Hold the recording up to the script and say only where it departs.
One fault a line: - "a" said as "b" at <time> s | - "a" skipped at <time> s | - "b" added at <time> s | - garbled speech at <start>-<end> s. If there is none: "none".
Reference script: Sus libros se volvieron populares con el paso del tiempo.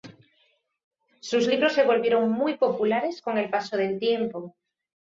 - "muy" added at 2.3 s